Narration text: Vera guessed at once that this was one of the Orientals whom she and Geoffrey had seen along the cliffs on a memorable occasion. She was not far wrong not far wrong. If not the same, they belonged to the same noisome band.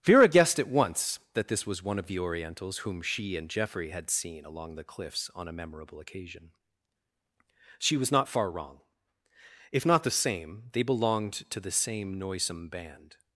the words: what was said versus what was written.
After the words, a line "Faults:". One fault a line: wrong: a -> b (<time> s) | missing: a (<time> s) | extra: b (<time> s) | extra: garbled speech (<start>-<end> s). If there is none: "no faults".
Vera guessed at once that this was one of the Orientals whom she and Geoffrey had seen along the cliffs on a memorable occasion. She was not far wrong. If not the same, they belonged to the same noisome band.
Faults:
missing: not far wrong (8.8 s)